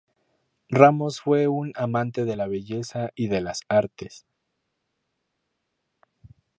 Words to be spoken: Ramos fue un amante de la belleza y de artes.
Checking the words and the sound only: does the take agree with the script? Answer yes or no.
no